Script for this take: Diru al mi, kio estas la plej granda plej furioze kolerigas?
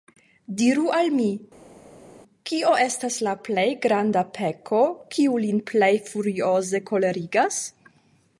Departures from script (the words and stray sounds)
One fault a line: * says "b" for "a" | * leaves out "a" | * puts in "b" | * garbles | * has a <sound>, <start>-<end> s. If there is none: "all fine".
* puts in "peko kiu lin"